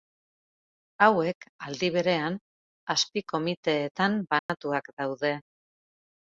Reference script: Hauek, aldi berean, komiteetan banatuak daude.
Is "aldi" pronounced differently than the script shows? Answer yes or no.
no